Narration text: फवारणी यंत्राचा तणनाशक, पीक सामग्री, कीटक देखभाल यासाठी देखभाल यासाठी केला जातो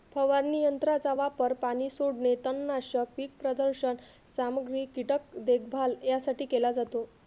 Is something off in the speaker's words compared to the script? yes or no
yes